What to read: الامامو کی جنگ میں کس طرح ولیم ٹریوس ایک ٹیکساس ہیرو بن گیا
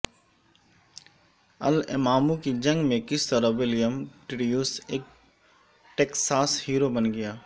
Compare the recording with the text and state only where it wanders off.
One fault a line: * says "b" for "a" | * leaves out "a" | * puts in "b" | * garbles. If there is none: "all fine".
all fine